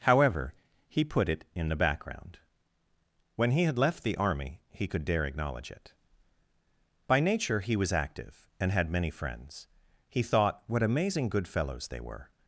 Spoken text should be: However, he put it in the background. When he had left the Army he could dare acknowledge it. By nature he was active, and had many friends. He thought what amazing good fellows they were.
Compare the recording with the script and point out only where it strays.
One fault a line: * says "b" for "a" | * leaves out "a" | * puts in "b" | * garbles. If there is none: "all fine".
all fine